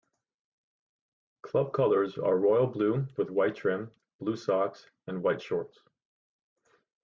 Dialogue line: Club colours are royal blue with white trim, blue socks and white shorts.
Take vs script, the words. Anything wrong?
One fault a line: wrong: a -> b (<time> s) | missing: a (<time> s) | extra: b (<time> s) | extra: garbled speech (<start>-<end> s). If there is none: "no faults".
no faults